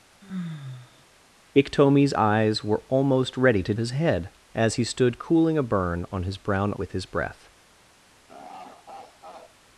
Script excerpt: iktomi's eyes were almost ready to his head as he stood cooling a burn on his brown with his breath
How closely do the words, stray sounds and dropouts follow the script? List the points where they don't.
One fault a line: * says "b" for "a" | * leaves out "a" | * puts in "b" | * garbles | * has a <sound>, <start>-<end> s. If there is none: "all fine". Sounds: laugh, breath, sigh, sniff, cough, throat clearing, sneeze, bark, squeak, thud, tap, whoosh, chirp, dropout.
* has a sigh, 0.2-1.0 s
* has a laugh, 8.3-9.6 s